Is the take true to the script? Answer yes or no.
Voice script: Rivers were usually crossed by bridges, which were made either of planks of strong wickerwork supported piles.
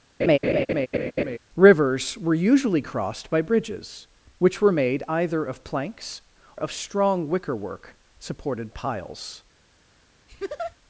yes